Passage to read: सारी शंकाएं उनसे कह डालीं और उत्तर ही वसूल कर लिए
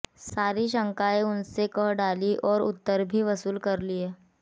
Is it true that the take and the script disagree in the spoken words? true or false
true